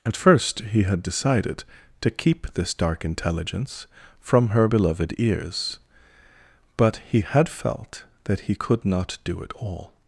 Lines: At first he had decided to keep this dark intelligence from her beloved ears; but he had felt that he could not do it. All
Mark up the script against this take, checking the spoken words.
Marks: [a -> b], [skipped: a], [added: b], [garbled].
At first he had decided to keep this dark intelligence from her beloved ears; but he had felt that he could not do it. All